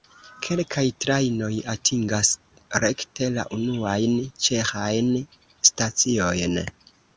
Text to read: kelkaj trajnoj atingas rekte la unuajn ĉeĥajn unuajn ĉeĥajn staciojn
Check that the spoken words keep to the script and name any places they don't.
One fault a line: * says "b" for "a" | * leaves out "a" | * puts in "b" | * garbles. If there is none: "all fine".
* leaves out "unuajn ĉeĥajn"